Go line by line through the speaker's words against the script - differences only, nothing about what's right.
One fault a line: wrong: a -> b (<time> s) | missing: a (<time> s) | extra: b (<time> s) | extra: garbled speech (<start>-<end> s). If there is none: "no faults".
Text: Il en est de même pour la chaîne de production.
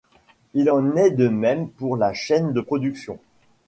no faults